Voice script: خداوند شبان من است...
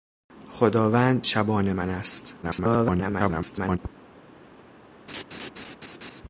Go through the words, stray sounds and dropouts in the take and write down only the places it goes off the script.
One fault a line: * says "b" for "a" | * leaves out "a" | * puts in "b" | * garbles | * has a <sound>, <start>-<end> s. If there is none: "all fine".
* garbles
* has a laugh, 5.1-6.2 s